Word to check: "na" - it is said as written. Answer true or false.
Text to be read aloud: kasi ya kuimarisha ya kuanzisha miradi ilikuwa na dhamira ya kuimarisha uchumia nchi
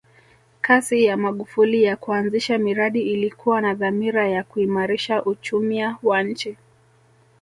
true